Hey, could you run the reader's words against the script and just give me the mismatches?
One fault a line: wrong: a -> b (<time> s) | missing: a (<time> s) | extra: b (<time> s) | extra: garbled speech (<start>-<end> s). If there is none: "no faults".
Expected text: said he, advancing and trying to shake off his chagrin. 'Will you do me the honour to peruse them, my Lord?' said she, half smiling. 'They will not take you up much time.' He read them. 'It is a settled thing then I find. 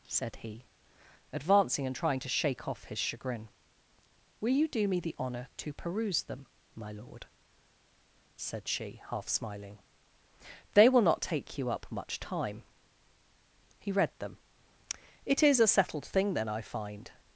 no faults